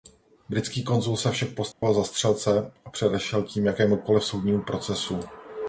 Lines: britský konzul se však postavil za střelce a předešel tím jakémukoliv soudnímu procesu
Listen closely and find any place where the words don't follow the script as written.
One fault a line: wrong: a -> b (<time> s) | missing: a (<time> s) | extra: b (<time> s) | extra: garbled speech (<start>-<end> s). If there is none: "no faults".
no faults